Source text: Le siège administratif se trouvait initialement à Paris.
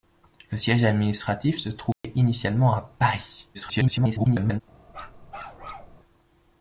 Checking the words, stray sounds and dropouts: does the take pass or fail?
fail